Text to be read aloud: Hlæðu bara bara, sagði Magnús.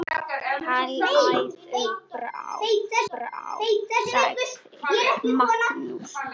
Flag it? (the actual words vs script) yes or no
no